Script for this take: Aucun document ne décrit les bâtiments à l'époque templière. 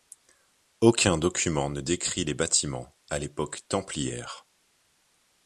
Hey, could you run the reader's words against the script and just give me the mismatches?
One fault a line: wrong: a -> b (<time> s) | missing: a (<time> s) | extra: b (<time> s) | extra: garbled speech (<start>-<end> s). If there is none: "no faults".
no faults